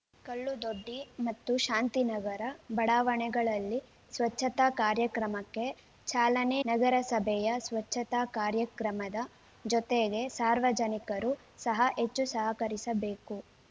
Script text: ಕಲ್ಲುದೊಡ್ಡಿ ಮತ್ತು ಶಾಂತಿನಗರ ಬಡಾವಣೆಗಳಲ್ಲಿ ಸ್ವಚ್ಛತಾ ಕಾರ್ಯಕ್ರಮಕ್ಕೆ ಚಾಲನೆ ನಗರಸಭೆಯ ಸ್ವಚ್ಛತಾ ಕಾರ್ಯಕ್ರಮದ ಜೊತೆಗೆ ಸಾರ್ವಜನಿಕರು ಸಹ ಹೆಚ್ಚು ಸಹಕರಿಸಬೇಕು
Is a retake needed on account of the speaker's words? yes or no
no